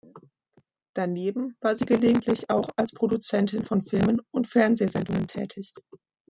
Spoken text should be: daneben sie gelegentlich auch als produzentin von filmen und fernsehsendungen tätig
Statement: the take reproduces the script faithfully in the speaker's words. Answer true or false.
false